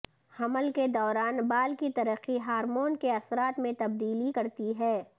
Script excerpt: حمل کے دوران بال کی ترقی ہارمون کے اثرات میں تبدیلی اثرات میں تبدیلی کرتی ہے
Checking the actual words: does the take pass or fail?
fail